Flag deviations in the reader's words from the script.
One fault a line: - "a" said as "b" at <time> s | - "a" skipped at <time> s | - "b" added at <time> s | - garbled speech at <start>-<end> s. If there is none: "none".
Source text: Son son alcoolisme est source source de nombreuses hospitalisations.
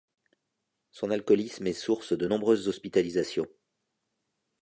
- "son" skipped at 1.1 s
- "source" skipped at 2.1 s